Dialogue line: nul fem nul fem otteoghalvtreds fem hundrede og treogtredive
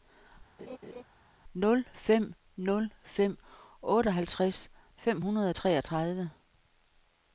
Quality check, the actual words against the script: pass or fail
pass